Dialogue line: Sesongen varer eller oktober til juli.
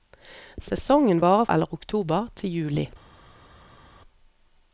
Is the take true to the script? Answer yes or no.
yes